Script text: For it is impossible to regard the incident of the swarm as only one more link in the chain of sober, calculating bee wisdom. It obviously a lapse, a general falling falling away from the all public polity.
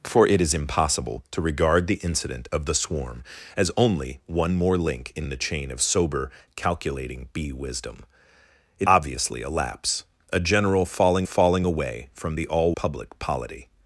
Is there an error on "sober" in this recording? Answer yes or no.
no